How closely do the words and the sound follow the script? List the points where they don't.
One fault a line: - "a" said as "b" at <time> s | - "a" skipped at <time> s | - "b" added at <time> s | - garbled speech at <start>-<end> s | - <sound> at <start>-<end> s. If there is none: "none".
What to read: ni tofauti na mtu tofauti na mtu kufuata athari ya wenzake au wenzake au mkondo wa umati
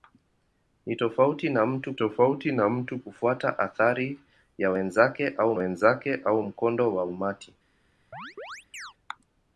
- chirp at 8.1-8.9 s